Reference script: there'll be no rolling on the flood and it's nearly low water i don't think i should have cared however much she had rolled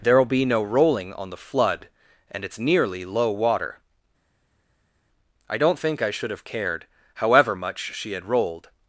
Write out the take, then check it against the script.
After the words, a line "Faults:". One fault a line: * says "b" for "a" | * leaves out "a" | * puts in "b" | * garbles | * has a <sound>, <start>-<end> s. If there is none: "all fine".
there'll be no rolling on the flood and it's nearly low water i don't think i should have cared however much she had rolled
Faults:
all fine